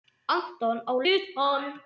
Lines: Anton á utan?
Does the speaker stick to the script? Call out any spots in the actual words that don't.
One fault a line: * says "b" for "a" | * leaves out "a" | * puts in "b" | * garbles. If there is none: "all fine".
all fine